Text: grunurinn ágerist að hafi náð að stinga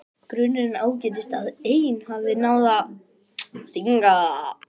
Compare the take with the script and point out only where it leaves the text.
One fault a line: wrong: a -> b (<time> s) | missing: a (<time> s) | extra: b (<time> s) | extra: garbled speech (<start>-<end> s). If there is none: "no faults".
extra: ein (1.6 s)